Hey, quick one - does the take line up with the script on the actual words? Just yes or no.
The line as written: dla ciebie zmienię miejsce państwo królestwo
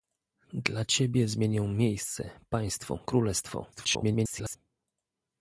no